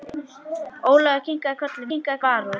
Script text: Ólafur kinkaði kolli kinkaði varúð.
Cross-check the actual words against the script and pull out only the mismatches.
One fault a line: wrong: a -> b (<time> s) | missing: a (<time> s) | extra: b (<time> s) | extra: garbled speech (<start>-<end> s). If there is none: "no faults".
no faults